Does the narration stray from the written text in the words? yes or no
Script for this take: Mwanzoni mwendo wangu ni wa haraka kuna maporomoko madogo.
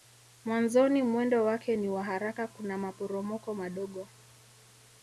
yes